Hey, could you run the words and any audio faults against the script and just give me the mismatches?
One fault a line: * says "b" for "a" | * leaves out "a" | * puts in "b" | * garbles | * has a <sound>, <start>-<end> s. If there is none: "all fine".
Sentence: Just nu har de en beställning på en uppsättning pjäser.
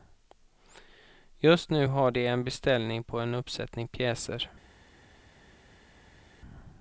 all fine